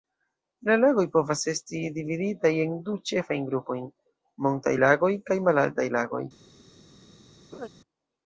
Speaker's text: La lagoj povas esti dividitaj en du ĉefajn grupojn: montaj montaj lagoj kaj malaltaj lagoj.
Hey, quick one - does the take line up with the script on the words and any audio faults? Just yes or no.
no